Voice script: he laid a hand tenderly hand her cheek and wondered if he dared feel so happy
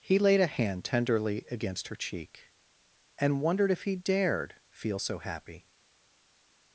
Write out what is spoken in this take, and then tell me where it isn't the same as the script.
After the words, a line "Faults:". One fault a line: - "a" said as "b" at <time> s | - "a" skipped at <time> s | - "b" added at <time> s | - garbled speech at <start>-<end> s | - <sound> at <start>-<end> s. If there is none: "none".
he laid a hand tenderly against her cheek and wondered if he dared feel so happy
Faults:
- "hand" said as "against" at 1.5 s